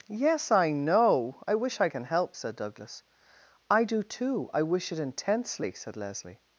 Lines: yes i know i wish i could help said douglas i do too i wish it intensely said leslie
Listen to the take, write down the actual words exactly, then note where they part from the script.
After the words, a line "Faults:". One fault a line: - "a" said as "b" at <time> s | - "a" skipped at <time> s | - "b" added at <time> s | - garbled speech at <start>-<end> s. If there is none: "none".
yes i know i wish i can help said douglas i do too i wish it intensely said leslie
Faults:
- "could" said as "can" at 1.9 s